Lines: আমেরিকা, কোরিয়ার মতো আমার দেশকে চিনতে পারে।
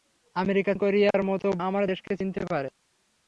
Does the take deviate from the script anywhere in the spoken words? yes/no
no